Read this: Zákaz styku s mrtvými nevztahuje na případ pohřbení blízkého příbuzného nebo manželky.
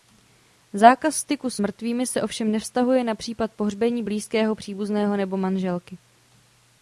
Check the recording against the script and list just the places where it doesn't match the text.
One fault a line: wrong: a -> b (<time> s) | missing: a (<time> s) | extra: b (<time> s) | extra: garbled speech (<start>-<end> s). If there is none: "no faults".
extra: se ovšem (2.1 s)